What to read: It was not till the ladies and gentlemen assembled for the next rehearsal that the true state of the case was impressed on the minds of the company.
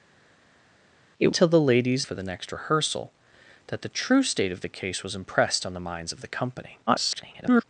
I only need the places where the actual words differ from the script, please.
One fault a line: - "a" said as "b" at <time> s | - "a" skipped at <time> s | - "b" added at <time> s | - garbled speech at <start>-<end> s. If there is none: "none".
- "was not" skipped at 1.3 s
- "and gentlemen assembled" skipped at 2.1 s
- garbled speech at 6.9-7.6 s